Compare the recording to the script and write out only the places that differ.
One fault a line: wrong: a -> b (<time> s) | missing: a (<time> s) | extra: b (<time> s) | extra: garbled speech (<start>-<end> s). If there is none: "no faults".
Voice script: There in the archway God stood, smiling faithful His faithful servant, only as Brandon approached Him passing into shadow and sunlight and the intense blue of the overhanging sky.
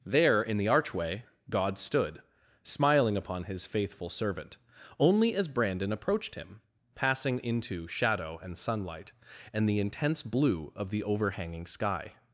wrong: faithful -> upon (3.2 s)